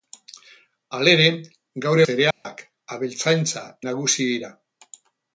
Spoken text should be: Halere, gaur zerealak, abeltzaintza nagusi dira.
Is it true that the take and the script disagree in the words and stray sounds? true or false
true